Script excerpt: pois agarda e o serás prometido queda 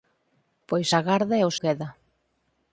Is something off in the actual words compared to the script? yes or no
yes